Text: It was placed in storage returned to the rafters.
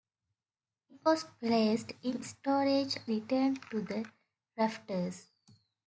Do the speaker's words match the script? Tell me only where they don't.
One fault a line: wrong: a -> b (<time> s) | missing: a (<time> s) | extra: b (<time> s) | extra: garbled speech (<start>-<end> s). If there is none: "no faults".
no faults